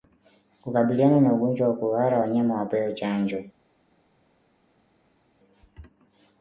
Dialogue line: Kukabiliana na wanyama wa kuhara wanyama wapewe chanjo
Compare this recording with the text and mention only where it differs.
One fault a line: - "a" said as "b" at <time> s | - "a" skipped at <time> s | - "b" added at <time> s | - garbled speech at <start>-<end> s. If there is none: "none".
- "wanyama" said as "ugonjwa" at 1.3 s